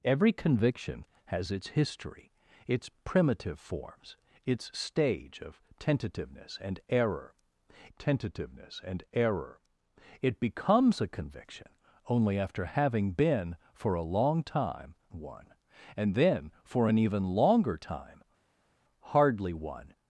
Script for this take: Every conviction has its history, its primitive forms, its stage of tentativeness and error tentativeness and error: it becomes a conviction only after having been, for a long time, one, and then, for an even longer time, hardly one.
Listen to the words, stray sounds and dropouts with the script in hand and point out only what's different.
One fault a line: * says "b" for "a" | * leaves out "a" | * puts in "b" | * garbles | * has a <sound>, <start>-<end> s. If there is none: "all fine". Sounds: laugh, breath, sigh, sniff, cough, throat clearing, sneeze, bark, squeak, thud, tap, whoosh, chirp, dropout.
all fine